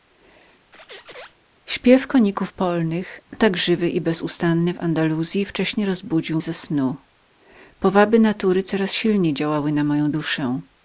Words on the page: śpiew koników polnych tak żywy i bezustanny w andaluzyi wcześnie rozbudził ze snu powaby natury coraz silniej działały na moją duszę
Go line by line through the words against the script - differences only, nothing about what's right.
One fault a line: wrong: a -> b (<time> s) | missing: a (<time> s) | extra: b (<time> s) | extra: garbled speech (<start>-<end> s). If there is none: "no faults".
no faults